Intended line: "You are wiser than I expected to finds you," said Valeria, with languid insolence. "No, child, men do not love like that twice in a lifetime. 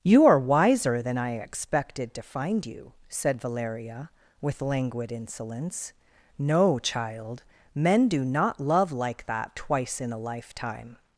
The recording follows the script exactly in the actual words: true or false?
false